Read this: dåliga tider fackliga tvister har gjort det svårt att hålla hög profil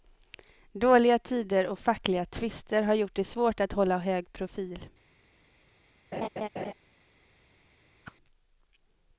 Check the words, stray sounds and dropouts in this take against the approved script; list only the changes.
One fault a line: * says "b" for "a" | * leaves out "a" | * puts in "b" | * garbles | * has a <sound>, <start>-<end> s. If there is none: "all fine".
* puts in "och"
* has a laugh, 6.1-6.7 s
* has a whoosh, 8.0-8.2 s